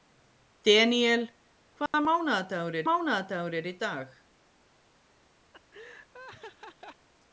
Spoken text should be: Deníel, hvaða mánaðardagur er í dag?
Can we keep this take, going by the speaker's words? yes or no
no